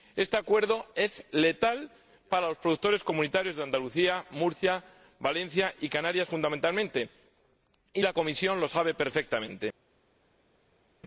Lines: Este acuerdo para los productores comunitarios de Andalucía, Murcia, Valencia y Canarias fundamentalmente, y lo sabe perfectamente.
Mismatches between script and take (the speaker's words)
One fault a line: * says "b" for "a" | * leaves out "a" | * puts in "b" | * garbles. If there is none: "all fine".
* puts in "es letal"
* puts in "la Comisión"